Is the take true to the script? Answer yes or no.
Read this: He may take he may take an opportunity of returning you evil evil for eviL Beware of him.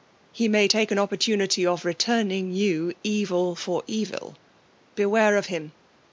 no